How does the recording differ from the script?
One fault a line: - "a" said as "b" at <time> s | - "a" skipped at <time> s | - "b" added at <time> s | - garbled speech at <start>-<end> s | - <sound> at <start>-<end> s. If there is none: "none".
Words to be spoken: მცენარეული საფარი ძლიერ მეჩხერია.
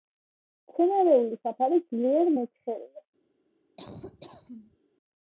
- laugh at 3.8-4.8 s